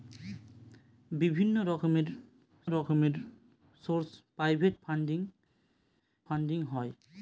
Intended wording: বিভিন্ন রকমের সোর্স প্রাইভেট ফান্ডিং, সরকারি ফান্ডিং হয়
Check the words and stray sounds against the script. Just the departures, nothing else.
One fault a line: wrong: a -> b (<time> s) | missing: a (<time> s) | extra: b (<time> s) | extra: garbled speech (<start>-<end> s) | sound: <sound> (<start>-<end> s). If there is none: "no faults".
extra: রকমের (2.7 s)
missing: সরকারি (5.2 s)